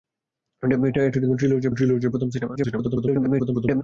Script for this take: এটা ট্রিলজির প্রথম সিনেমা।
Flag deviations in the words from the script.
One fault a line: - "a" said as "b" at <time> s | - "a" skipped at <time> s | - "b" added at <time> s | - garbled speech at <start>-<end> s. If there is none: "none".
- "ট্রিলজির" added at 1.7 s
- garbled speech at 2.6-3.8 s